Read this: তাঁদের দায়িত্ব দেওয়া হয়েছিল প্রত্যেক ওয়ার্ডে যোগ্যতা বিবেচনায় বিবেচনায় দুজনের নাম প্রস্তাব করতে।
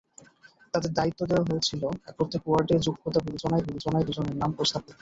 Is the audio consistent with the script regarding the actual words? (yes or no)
yes